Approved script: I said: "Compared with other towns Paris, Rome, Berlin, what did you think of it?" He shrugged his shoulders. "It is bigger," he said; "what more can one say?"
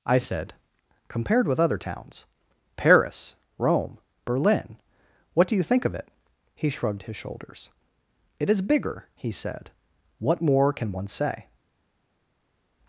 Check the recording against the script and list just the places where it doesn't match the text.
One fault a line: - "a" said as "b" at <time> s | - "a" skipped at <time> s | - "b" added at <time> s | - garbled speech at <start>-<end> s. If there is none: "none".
- "did" said as "do" at 5.5 s